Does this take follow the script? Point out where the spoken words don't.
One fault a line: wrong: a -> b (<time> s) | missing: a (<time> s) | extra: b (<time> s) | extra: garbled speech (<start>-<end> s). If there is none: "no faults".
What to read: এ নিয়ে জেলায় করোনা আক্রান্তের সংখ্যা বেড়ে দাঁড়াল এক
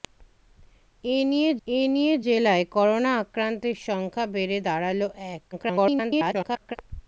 extra: এ নিয়ে (1.7 s)
extra: garbled speech (5.5-6.8 s)